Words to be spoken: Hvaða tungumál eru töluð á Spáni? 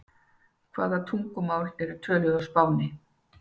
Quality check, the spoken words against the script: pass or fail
pass